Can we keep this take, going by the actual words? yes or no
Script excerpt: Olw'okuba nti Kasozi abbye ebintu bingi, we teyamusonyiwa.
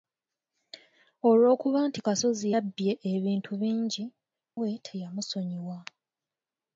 yes